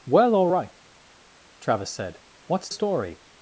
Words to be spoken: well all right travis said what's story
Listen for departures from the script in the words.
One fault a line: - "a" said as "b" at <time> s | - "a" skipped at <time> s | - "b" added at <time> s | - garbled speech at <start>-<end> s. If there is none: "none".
none